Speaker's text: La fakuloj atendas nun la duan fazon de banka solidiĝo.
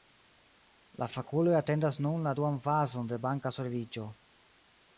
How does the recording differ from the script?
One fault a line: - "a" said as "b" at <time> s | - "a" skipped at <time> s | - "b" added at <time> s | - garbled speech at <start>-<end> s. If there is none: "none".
none